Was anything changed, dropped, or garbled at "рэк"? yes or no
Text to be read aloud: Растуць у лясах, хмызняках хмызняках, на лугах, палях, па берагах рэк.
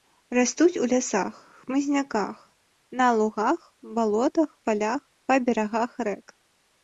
no